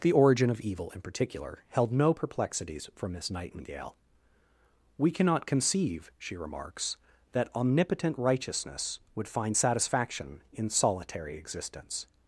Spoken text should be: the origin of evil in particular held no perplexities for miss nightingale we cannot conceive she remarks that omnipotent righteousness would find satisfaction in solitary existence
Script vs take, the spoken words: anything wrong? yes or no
no